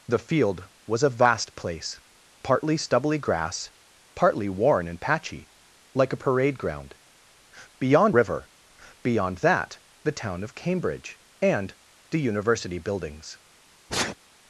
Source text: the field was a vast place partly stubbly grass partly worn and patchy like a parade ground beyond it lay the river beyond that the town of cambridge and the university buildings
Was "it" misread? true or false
true